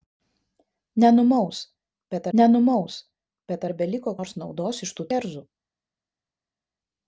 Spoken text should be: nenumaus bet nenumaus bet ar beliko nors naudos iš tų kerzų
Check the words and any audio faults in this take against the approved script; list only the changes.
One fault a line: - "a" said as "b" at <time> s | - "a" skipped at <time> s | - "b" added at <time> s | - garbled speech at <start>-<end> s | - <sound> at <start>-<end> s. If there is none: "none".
none